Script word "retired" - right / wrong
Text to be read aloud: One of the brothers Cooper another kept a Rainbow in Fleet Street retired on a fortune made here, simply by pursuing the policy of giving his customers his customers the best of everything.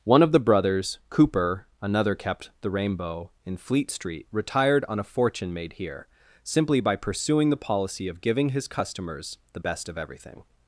right